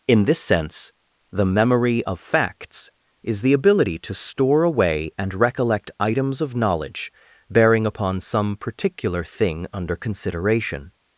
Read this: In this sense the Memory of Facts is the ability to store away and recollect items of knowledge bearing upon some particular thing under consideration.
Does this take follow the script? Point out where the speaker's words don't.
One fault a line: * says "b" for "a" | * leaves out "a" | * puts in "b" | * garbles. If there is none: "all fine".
all fine